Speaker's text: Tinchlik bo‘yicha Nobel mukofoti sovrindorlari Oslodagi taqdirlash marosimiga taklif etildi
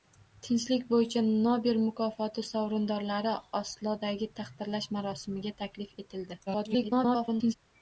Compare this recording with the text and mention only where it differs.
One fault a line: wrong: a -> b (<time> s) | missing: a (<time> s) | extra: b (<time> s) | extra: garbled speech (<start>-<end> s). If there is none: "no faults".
extra: garbled speech (6.5-7.5 s)